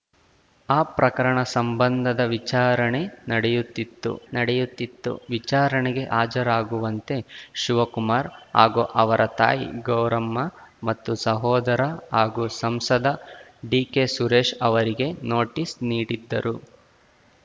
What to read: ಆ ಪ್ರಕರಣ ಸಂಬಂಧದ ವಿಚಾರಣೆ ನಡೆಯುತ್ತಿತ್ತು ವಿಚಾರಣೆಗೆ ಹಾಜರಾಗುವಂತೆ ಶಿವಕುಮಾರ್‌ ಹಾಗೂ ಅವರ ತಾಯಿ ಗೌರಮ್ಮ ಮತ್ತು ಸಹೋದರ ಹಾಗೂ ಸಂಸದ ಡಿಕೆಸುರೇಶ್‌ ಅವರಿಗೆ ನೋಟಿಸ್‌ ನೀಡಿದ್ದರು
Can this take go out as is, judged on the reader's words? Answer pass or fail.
fail